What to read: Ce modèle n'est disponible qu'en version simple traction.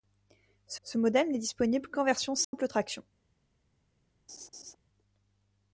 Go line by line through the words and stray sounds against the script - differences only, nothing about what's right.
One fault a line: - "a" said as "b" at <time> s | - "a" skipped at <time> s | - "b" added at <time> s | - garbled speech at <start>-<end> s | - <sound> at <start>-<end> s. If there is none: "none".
- "ce" added at 0.8 s
- dropout at 2.4-2.5 s
- laugh at 4.3-4.8 s